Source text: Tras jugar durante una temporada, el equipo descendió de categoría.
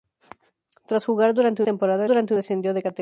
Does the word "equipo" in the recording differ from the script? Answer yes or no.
yes